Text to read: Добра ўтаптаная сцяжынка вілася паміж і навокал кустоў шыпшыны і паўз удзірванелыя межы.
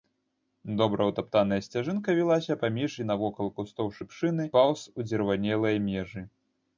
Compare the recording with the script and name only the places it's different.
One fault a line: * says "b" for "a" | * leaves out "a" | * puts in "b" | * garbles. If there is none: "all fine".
* leaves out "і"